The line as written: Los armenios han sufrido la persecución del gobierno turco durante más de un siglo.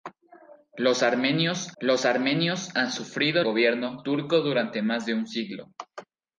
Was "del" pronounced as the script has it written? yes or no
no